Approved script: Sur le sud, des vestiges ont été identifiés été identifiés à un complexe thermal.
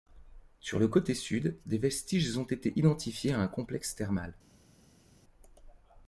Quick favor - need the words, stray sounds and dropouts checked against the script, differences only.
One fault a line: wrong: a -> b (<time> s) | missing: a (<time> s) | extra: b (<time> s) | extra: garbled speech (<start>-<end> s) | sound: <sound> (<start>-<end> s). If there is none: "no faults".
extra: côté (0.9 s)
missing: été identifiés (3.3 s)